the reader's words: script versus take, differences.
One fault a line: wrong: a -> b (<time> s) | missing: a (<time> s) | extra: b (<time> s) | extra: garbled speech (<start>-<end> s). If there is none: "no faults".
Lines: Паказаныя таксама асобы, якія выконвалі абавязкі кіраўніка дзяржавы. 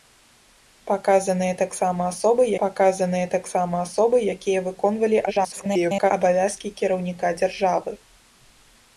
extra: паказаныя таксама асобы (2.6 s)
extra: garbled speech (5.3-6.1 s)